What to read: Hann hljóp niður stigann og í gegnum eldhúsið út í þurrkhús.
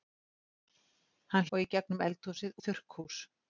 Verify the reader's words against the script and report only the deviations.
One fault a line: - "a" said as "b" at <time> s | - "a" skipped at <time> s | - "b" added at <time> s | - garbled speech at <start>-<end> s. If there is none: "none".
- "hljóp niður stigann" skipped at 1.4 s
- "út" skipped at 2.6 s